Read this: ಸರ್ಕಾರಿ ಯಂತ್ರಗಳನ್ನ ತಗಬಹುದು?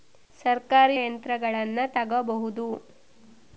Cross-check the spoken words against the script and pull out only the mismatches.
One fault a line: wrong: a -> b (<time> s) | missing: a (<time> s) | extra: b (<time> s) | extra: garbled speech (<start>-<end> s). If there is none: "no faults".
no faults